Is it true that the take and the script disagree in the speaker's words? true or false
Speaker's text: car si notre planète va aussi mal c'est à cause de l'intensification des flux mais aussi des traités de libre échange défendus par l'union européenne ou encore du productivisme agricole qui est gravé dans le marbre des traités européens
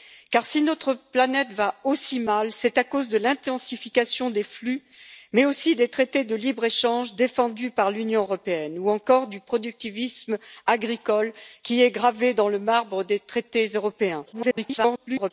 true